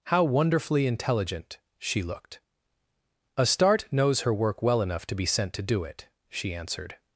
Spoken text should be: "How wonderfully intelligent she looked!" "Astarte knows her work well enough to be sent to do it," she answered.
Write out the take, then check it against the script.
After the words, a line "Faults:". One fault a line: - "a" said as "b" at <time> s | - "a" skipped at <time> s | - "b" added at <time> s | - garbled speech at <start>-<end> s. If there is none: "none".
"How wonderfully intelligent she looked!" "Astarte knows her work well enough to be sent to do it," she answered.
Faults:
none